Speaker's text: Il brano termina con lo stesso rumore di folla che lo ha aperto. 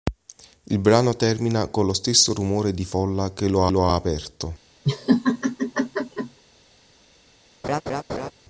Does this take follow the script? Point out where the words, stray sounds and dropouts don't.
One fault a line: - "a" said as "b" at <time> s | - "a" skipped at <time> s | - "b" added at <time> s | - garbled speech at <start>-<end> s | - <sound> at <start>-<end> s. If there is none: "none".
- "lo" added at 3.7 s
- laugh at 4.8-6.4 s
- laugh at 7.6-8.3 s